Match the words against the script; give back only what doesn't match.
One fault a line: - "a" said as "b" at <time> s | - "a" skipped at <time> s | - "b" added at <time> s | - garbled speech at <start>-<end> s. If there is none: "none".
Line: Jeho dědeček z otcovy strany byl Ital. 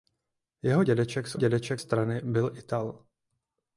- "otcovy" said as "dědeček" at 1.4 s